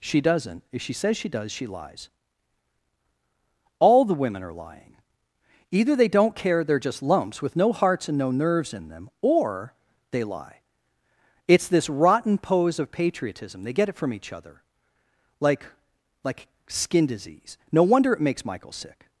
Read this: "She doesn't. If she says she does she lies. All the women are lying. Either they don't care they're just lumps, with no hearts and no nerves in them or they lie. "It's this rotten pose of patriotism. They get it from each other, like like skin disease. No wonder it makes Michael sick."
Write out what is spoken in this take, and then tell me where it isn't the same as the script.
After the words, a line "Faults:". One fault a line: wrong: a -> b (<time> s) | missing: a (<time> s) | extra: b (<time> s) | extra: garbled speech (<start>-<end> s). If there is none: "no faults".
"She doesn't. If she says she does she lies. All the women are lying. Either they don't care they're just lumps, with no hearts and no nerves in them or they lie. "It's this rotten pose of patriotism. They get it from each other, like like skin disease. No wonder it makes Michael sick."
Faults:
no faults